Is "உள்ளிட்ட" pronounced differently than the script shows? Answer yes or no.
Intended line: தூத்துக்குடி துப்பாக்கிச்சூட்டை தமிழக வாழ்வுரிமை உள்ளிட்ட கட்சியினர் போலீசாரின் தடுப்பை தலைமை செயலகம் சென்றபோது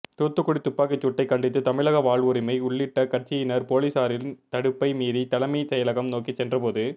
no